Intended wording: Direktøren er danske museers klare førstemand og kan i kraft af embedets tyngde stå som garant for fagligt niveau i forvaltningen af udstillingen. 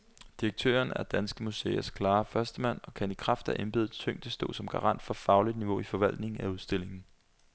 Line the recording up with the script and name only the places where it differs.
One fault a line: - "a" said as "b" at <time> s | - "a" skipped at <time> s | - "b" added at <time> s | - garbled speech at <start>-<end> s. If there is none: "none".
none